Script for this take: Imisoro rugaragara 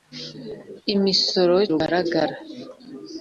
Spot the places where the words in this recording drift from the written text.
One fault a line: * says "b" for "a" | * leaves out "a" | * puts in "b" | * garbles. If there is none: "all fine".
all fine